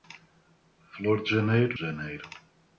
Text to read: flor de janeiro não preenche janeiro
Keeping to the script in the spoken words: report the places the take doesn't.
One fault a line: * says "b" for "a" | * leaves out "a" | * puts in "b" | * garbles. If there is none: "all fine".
* leaves out "não preenche"